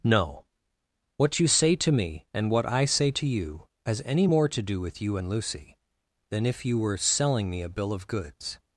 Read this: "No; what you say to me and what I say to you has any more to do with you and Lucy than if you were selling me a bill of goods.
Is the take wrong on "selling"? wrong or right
right